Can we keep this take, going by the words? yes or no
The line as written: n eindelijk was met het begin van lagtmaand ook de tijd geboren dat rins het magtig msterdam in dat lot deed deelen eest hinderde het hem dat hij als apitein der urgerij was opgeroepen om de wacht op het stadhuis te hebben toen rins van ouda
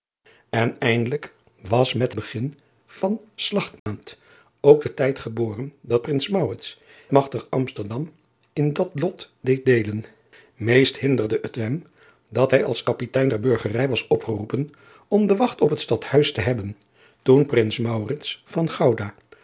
no